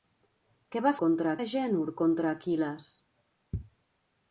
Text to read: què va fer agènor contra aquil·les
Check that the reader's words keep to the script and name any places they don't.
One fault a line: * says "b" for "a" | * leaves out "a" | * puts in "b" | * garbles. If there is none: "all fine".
* says "contra" for "fer"